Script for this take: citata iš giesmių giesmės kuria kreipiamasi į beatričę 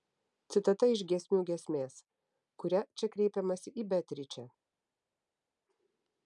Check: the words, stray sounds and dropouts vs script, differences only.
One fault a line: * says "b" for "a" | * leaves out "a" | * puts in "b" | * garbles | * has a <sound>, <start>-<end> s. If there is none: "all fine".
* puts in "čia"